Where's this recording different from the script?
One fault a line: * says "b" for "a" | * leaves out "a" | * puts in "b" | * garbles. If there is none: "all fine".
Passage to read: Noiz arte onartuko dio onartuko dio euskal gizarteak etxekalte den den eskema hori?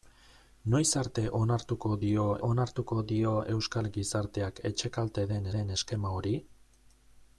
all fine